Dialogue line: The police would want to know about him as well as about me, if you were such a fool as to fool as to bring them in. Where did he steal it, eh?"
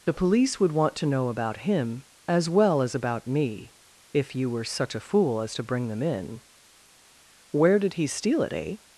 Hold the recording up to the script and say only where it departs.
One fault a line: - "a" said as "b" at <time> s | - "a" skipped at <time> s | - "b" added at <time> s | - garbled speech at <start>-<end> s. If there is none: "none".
- "fool as to" skipped at 5.6 s